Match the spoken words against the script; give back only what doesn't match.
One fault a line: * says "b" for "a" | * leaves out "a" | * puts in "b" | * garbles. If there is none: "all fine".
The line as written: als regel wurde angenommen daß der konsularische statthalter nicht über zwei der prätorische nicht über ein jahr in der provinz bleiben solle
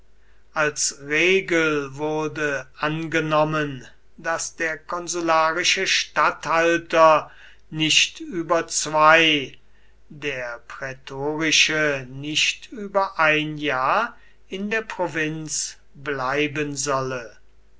all fine